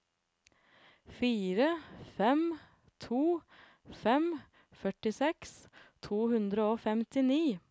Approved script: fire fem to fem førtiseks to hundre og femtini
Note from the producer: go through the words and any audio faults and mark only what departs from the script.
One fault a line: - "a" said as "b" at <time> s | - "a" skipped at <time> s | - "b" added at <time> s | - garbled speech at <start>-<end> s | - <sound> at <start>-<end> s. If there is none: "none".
none